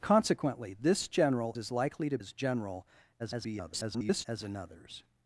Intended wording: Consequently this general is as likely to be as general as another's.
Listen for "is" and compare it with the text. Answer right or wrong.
wrong